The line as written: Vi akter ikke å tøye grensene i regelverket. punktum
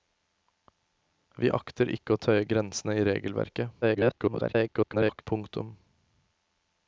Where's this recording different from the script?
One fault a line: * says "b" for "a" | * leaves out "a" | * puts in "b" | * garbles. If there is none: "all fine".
* garbles